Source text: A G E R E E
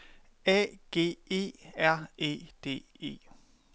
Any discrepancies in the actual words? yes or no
yes